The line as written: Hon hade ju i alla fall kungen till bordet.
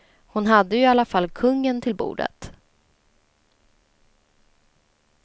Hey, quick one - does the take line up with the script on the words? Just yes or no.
yes